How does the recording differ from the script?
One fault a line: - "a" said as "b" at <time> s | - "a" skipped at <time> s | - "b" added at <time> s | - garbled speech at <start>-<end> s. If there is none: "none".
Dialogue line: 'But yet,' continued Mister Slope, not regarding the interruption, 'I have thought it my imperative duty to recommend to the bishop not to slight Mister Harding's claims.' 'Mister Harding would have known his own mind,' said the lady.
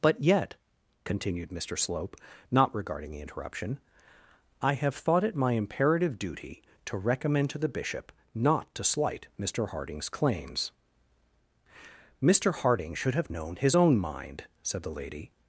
- "would" said as "should" at 12.9 s